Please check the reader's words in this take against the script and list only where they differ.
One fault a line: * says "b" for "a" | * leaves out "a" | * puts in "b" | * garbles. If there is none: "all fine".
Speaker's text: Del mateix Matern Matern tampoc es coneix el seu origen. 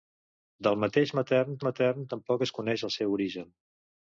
all fine